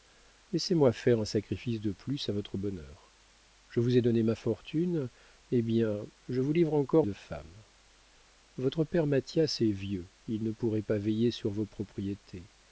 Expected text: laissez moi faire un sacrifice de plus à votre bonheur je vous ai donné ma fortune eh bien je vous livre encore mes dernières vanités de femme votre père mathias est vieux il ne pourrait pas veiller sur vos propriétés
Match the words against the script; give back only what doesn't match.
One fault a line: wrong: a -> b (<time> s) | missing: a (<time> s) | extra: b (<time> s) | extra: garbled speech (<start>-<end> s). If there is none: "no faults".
missing: mes dernières vanités (7.0 s)